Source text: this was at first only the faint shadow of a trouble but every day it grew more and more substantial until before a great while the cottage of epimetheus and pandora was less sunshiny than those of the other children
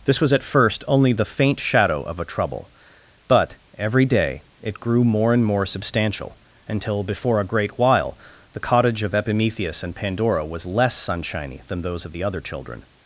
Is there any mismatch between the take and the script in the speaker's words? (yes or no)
no